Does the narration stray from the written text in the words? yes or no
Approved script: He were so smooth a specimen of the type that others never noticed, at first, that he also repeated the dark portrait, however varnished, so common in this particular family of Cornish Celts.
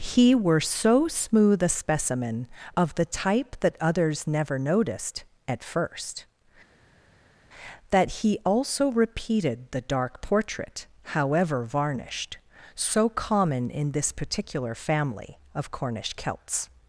no